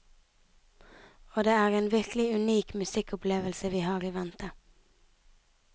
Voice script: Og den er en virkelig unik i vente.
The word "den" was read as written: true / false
false